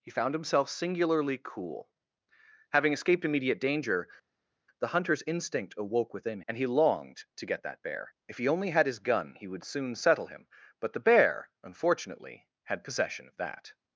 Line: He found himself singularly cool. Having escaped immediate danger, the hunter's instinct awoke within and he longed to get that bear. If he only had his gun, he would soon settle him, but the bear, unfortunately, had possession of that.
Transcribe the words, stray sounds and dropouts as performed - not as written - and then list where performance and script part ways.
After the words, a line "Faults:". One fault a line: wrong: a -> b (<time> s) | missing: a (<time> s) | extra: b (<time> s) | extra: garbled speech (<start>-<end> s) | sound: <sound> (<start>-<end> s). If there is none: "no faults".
He found himself singularly cool. Having escaped immediate danger, the hunter's instinct awoke within and he longed to get that bear. If he only had his gun, he would soon settle him, but the bear, unfortunately, had possession of that.
Faults:
no faults